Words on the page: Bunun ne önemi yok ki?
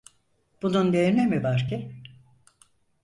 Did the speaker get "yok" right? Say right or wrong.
wrong